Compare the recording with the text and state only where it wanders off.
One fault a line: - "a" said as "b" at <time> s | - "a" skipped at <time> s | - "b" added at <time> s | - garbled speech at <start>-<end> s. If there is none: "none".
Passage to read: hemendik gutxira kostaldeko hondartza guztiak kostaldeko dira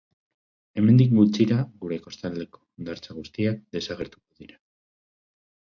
- "gure" added at 1.8 s
- "kostaldeko" said as "desagertuko" at 3.8 s